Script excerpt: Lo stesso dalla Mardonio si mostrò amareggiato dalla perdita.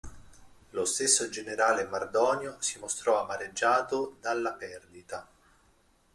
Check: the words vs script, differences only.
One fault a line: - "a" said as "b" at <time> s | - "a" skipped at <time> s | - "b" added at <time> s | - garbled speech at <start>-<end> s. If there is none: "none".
- "dalla" said as "generale" at 1.3 s